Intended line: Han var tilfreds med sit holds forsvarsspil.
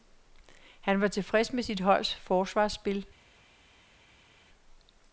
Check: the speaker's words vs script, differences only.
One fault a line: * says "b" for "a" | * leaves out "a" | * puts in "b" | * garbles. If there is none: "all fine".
all fine